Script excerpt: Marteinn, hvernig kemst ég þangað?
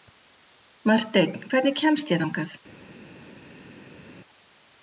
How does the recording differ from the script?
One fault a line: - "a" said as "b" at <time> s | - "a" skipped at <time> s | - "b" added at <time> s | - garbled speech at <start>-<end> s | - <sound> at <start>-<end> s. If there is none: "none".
none